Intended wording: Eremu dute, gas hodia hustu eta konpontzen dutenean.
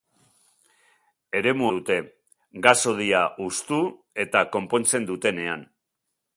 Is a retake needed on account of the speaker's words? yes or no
no